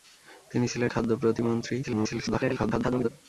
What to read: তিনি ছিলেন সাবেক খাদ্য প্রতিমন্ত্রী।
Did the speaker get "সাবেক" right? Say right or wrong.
wrong